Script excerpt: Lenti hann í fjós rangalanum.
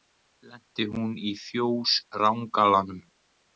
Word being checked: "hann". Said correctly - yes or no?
no